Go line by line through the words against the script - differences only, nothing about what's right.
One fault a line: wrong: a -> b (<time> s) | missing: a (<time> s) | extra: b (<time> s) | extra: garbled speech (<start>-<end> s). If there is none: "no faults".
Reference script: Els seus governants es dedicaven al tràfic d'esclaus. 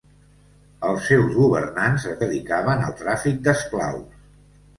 no faults